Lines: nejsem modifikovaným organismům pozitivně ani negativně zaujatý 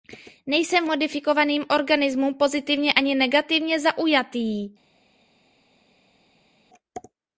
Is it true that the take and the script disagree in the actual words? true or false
false